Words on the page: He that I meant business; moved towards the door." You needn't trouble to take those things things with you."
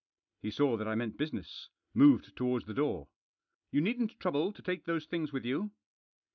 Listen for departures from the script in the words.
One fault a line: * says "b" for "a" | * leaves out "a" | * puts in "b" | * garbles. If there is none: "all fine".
* puts in "saw"
* leaves out "things"